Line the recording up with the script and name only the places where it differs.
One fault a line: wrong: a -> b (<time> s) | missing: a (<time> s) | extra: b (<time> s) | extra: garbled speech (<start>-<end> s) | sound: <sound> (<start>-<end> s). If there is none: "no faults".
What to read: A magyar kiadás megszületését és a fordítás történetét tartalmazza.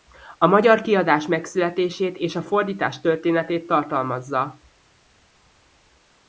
no faults